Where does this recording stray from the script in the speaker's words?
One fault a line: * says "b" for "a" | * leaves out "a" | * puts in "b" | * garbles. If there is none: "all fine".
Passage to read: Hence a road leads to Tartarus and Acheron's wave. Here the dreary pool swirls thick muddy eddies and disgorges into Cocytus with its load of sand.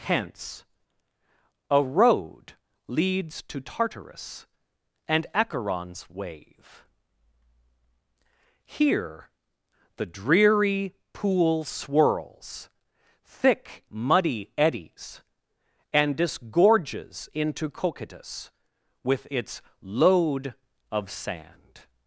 all fine